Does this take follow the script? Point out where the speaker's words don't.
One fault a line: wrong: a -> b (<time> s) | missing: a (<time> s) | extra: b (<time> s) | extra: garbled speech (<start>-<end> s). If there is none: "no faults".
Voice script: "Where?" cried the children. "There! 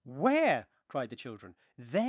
no faults